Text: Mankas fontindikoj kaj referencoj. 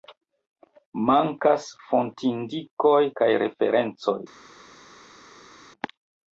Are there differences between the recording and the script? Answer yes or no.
no